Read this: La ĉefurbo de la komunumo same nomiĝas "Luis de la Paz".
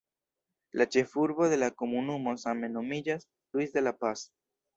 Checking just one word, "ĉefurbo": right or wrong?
right